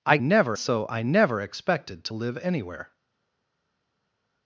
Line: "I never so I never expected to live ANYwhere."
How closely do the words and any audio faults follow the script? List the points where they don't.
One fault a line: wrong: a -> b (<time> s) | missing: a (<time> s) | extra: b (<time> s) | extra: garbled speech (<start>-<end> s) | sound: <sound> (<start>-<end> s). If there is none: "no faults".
no faults